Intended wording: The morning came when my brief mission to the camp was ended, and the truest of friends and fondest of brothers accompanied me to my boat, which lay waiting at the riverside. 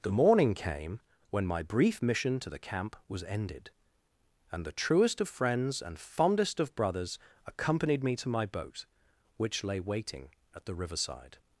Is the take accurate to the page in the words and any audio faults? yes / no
yes